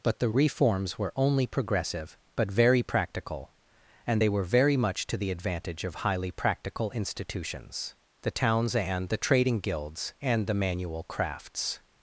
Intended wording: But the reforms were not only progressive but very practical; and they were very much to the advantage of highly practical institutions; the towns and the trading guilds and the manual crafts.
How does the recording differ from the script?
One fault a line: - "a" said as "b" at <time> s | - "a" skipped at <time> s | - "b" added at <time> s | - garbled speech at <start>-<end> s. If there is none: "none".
- "not" skipped at 1.1 s